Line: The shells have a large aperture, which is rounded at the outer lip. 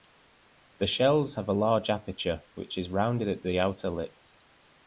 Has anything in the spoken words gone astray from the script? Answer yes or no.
no